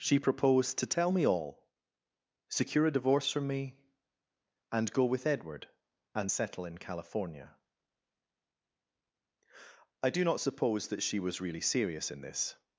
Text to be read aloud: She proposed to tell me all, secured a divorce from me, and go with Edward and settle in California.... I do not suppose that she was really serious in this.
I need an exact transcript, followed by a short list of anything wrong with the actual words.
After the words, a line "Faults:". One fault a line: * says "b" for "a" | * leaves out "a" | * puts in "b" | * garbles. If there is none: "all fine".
She proposed to tell me all, secure a divorce from me, and go with Edward and settle in California.... I do not suppose that she was really serious in this.
Faults:
* says "secure" for "secured"